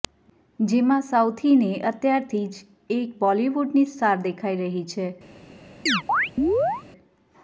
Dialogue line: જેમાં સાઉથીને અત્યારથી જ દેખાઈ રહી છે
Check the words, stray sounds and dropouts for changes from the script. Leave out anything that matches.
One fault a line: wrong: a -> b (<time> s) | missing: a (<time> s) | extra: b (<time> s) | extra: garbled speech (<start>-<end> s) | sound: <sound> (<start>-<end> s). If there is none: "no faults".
extra: એક બોલિવૂડની સ્ટાર (3.0 s)
sound: chirp (5.9-6.8 s)